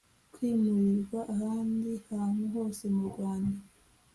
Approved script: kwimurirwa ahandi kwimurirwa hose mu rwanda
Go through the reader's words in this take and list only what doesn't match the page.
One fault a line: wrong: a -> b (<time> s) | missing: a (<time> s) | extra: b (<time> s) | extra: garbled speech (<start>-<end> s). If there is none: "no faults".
wrong: kwimurirwa -> hantu (2.1 s)